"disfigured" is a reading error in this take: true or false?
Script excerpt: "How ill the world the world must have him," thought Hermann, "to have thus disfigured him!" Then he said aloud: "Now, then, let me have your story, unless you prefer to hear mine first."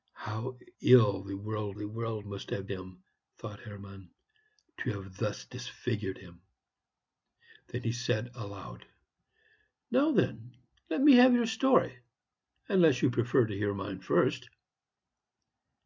false